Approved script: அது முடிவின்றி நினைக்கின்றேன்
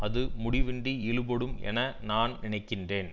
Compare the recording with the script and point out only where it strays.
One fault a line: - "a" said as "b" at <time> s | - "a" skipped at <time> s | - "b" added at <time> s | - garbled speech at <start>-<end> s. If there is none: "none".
- "இழுபடும் என நான்" added at 1.1 s